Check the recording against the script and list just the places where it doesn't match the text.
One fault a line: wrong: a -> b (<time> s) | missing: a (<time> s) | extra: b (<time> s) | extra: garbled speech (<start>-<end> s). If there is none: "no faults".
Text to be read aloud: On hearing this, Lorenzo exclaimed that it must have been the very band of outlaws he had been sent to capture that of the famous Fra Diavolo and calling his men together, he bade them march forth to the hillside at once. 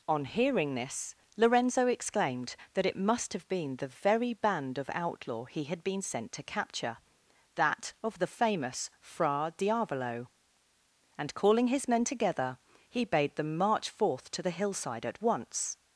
wrong: outlaws -> outlaw (4.9 s)